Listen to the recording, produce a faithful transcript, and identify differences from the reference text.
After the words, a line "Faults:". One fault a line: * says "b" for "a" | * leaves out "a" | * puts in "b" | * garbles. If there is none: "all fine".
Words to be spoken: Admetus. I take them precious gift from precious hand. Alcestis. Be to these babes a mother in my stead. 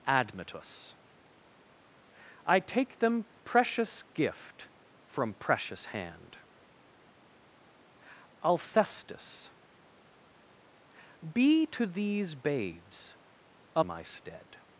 Admetus. I take them precious gift from precious hand. Alcestis. Be to these babes a my stead.
Faults:
* leaves out "mother in"